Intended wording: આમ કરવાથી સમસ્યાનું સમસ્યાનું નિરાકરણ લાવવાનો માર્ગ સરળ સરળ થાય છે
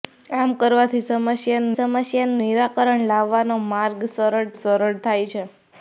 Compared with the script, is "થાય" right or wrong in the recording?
right